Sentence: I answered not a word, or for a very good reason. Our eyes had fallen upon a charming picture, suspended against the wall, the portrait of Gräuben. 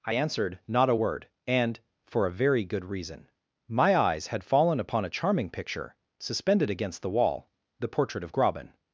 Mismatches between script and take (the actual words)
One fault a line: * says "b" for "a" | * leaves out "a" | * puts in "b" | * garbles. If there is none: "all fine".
* says "and" for "or"
* says "My" for "Our"